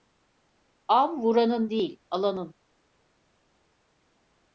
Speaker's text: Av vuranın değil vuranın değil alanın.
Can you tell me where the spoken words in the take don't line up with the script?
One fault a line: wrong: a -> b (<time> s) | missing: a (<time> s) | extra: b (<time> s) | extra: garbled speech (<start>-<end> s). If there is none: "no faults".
missing: vuranın değil (2.0 s)